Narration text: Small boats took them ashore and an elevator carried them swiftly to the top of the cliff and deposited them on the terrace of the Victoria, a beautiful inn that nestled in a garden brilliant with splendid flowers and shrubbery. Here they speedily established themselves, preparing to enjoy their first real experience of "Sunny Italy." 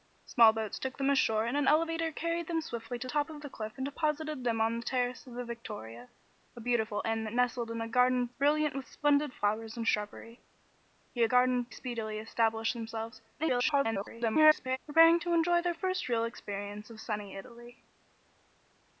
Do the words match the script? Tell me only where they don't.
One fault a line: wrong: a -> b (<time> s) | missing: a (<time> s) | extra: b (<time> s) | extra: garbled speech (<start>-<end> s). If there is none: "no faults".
missing: the (3.1 s)
wrong: they -> garden (11.2 s)
extra: garbled speech (13.4-14.8 s)